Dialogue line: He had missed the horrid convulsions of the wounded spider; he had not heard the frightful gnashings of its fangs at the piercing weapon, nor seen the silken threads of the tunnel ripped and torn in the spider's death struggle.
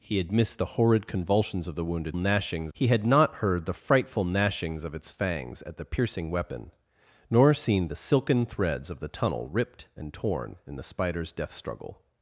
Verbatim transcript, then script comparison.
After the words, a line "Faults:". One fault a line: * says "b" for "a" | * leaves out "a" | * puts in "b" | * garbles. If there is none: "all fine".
He had missed the horrid convulsions of the wounded gnashings; he had not heard the frightful gnashings of its fangs at the piercing weapon, nor seen the silken threads of the tunnel ripped and torn in the spider's death struggle.
Faults:
* says "gnashings" for "spider"